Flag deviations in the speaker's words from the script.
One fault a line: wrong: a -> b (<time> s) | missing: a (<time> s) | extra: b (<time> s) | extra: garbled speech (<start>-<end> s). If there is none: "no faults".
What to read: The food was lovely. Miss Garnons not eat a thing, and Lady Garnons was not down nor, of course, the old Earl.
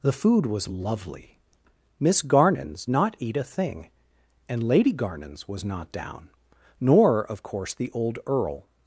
no faults